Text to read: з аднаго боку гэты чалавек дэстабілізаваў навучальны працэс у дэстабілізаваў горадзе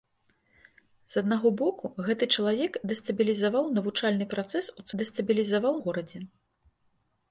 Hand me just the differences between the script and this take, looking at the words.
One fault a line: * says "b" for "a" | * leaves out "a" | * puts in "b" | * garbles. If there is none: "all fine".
all fine